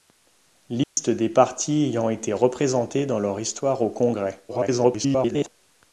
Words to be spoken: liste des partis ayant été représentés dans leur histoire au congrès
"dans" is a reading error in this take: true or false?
false